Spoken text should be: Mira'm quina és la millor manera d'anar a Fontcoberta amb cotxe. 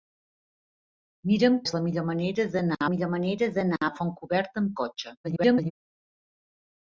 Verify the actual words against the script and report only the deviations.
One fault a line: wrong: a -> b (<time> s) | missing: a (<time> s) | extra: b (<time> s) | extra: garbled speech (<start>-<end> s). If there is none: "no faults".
missing: quina (1.6 s)
extra: millor manera d'anar (2.9 s)
extra: garbled speech (5.2-5.7 s)